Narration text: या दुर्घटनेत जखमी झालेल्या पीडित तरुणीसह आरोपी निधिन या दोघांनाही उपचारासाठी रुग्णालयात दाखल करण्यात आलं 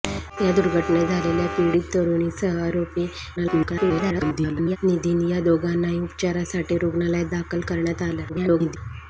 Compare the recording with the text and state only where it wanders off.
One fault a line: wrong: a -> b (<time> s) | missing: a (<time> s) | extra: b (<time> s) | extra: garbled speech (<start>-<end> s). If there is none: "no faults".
missing: जखमी (1.1 s)
extra: garbled speech (3.4-4.8 s)
extra: garbled speech (8.3-8.8 s)